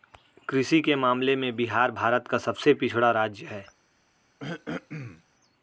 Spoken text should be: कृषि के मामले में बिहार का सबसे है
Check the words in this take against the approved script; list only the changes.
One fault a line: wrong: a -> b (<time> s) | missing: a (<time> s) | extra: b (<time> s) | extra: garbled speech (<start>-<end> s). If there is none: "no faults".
extra: भारत (1.9 s)
extra: पिछड़ा राज्य (2.7 s)